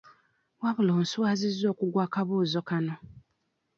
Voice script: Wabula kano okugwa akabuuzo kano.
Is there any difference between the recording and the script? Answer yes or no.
yes